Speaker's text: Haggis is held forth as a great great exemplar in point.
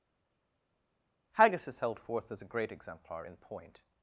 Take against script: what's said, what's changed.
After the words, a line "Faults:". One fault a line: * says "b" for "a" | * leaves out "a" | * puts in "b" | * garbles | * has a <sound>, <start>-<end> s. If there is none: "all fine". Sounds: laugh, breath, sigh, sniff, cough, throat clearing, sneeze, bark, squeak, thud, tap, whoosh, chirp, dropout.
Haggis is held forth as a great exemplar in point.
Faults:
* leaves out "great"